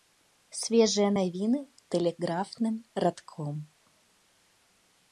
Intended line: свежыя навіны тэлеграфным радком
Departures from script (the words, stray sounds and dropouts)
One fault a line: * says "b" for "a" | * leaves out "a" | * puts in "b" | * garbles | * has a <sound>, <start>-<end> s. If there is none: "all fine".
all fine